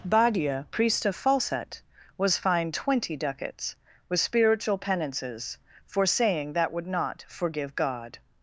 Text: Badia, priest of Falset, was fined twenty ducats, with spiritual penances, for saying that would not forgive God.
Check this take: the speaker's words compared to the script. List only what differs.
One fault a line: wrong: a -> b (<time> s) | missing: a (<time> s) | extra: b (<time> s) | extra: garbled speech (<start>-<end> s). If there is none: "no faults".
no faults